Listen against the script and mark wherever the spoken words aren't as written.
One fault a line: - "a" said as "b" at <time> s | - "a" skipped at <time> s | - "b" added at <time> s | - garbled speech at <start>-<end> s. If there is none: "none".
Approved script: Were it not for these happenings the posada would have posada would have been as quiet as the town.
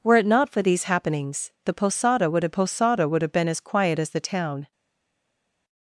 none